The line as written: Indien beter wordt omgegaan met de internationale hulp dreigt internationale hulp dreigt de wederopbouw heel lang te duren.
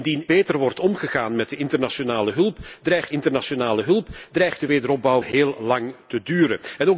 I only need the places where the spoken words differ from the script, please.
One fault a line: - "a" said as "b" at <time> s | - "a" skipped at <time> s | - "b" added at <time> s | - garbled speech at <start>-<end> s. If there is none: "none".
none